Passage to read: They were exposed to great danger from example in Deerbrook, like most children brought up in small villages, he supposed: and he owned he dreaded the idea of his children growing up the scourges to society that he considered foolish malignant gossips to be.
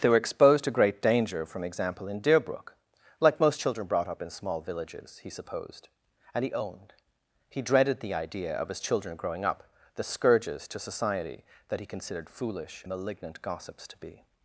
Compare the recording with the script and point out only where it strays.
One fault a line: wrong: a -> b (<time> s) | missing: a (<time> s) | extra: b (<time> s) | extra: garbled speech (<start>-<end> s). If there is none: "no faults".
no faults